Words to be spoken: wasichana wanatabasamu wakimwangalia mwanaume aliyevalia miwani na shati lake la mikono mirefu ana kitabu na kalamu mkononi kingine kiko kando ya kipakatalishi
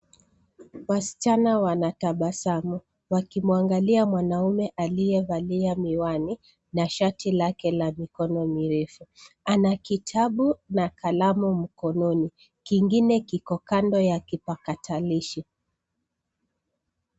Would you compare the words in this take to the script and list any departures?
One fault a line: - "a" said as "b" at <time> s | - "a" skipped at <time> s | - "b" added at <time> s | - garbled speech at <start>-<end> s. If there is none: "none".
none